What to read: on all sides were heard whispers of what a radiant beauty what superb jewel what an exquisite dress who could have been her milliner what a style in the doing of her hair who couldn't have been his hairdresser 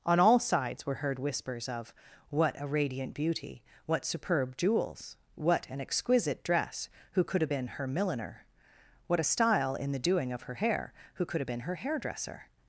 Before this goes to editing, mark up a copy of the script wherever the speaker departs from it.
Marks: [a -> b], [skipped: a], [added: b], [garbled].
on all sides were heard whispers of what a radiant beauty what superb [jewel -> jewels] what an exquisite dress who could have been her milliner what a style in the doing of her hair who [couldn't -> could] have been [his -> her] hairdresser